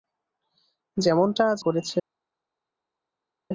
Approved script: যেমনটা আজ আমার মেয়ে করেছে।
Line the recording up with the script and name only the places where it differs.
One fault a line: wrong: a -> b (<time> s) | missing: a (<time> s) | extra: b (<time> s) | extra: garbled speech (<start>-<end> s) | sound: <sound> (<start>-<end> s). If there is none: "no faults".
missing: আমার মেয়ে (1.6 s)